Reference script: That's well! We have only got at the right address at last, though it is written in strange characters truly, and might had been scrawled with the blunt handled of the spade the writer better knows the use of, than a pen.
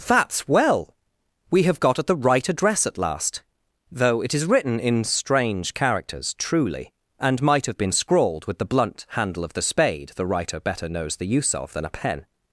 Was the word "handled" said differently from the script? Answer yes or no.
yes